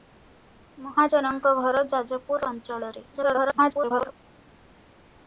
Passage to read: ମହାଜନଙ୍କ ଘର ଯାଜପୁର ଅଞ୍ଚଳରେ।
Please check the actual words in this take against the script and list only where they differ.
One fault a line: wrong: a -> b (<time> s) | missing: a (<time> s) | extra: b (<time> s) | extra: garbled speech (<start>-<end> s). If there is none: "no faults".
extra: garbled speech (3.1-4.1 s)